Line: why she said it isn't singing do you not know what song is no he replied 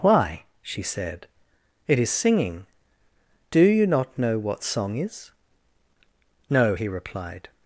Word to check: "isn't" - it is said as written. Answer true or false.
false